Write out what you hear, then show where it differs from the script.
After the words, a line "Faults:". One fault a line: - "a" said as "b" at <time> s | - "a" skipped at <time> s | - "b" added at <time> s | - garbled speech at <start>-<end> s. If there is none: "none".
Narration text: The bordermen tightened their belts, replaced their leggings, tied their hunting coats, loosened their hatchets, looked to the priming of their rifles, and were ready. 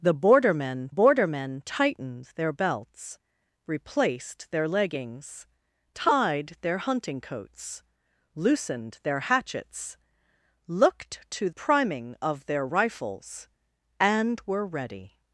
The bordermen bordermen tightened their belts, replaced their leggings, tied their hunting coats, loosened their hatchets, looked to priming of their rifles, and were ready.
Faults:
- "bordermen" added at 0.9 s
- "the" skipped at 11.5 s